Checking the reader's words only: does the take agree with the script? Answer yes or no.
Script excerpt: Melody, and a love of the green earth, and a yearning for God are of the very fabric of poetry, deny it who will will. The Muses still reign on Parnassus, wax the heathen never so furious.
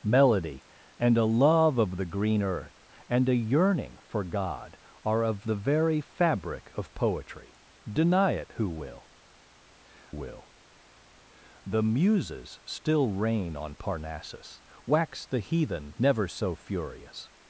yes